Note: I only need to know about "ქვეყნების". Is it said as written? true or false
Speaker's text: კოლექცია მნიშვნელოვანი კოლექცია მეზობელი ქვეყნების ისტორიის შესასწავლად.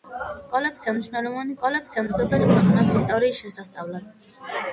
true